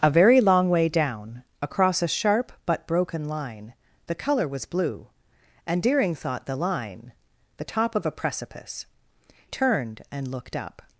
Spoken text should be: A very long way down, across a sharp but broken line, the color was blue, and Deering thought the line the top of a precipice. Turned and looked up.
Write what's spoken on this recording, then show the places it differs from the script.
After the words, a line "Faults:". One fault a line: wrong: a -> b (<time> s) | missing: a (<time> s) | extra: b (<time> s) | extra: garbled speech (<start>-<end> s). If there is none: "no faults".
A very long way down, across a sharp but broken line, the color was blue, and Deering thought the line the top of a precipice. Turned and looked up.
Faults:
no faults